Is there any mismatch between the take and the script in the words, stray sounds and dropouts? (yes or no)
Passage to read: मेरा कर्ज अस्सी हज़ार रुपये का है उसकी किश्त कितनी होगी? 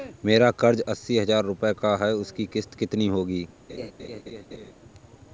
yes